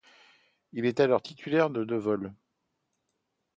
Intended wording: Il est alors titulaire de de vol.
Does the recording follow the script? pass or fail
pass